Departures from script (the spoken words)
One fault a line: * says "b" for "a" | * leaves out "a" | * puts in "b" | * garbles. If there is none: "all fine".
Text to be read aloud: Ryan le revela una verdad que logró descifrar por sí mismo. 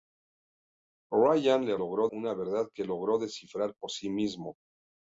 * says "logró" for "revela"